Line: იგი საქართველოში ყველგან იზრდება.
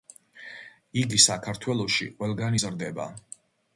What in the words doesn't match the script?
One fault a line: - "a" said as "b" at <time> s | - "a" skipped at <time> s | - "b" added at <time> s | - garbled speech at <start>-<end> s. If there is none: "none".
none